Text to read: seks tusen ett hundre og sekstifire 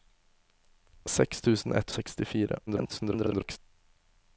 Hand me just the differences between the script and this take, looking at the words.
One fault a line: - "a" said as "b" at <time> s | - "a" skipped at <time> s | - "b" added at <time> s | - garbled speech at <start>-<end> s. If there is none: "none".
- "hundre" skipped at 1.9 s
- garbled speech at 2.7-3.6 s